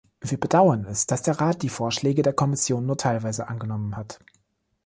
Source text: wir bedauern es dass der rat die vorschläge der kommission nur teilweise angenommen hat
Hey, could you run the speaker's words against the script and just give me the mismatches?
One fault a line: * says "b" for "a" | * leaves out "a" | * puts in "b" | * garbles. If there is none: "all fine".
all fine